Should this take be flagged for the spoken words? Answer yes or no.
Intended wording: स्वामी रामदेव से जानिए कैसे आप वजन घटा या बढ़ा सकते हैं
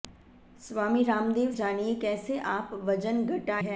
yes